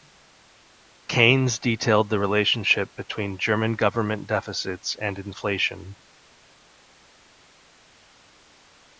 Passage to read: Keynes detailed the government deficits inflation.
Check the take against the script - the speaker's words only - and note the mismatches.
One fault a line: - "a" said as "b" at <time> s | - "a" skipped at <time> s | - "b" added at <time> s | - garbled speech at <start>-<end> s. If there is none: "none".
- "relationship between German" added at 2.2 s
- "and" added at 5.0 s